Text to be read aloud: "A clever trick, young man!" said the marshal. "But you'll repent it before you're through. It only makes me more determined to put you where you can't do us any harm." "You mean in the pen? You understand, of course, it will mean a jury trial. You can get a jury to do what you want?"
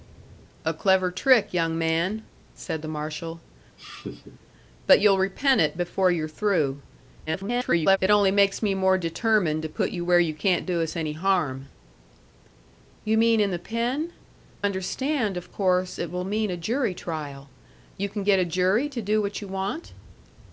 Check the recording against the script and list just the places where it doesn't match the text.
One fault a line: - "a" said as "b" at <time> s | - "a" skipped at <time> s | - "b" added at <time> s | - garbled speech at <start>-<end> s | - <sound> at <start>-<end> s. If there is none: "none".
- laugh at 3.8-4.5 s
- garbled speech at 7.3-8.0 s
- "You" skipped at 14.1 s